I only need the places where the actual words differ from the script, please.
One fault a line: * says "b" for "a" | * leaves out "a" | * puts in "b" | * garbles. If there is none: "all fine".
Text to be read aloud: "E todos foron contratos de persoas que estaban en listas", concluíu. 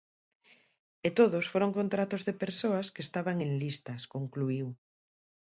all fine